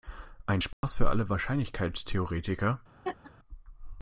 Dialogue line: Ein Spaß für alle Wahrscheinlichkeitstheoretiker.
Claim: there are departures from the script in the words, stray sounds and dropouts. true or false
true